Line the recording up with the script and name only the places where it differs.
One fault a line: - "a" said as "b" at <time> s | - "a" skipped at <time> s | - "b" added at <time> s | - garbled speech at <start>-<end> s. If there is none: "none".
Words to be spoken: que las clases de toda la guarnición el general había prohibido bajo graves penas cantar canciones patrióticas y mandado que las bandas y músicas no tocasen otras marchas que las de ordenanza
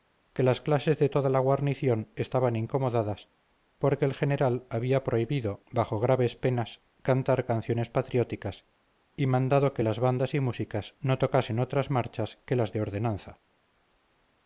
- "estaban incomodadas porque" added at 2.1 s